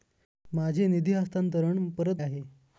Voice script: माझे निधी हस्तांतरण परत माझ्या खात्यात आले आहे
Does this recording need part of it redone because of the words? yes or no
yes